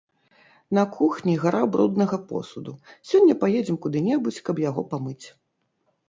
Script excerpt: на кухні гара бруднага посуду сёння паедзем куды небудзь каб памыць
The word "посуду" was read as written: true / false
true